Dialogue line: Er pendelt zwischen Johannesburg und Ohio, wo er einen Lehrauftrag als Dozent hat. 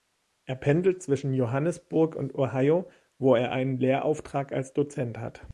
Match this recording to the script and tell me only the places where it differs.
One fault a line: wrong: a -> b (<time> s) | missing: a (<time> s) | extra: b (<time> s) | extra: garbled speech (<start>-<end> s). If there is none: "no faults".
no faults